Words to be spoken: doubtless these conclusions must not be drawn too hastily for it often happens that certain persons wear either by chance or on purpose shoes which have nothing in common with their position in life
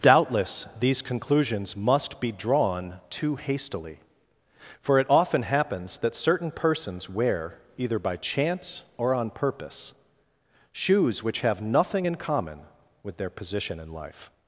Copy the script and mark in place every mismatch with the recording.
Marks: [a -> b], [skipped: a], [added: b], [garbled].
doubtless these conclusions must [skipped: not] be drawn too hastily for it often happens that certain persons wear either by chance or on purpose shoes which have nothing in common with their position in life